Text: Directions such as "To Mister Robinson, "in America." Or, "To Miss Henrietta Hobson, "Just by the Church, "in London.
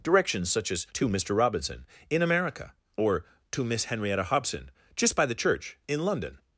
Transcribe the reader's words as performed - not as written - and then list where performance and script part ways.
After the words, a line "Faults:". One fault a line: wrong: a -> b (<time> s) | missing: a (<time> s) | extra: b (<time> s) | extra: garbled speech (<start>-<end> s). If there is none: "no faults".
Directions such as "To Mister Robinson, "in America." Or, "To Miss Henrietta Hobson, "Just by the Church, "in London.
Faults:
no faults